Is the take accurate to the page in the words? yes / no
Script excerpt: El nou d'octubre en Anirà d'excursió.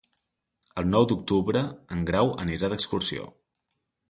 no